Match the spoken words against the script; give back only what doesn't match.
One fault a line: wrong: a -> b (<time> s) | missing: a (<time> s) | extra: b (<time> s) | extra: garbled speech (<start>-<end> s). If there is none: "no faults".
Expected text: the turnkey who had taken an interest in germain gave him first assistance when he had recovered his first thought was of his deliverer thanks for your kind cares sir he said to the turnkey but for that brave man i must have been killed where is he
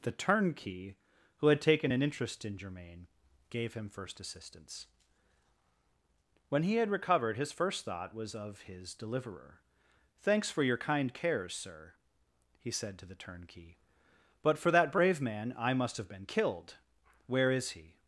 no faults